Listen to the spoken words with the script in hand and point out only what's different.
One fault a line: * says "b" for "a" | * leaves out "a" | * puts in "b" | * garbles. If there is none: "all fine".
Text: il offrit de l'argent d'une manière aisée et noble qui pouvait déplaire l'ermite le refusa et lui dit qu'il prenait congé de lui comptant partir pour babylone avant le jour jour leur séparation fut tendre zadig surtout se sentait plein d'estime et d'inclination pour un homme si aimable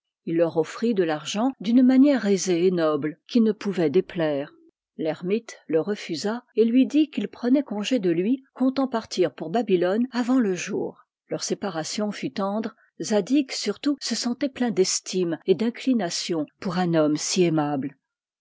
* puts in "leur"
* puts in "ne"
* leaves out "jour"